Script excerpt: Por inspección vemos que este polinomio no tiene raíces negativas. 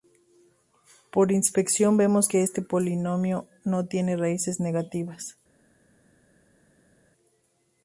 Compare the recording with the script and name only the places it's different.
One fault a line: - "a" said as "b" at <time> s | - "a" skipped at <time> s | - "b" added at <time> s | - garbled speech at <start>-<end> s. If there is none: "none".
none